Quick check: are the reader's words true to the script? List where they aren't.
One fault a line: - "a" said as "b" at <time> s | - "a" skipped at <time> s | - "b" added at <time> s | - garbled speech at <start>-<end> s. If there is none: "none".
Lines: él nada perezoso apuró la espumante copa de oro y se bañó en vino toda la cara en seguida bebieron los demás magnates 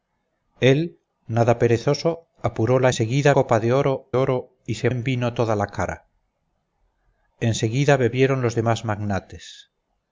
- "espumante" said as "seguida" at 2.9 s
- "oro" added at 4.2 s
- "bañó" skipped at 4.9 s